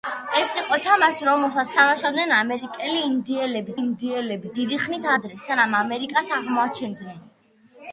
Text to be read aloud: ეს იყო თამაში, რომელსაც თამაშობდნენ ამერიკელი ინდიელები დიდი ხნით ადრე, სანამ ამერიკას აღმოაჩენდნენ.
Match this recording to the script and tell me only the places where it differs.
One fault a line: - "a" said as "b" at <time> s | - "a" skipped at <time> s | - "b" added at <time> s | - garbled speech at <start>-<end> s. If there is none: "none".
- "ინდიელები" added at 3.8 s